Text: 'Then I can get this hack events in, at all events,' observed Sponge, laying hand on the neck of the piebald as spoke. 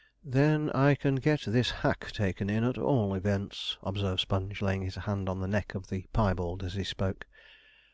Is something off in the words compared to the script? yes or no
yes